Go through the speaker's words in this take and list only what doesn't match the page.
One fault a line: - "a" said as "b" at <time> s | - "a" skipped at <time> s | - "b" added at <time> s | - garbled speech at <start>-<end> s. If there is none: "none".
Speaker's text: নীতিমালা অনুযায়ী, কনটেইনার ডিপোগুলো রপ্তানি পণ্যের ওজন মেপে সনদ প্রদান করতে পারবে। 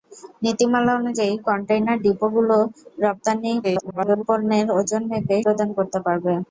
- garbled speech at 3.6-4.2 s
- "সনদ" skipped at 5.4 s